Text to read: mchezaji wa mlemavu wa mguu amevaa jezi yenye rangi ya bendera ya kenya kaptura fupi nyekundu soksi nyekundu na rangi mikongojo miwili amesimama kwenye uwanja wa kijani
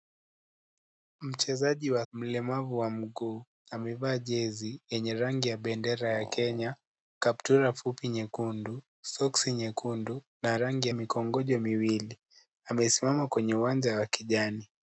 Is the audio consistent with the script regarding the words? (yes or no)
yes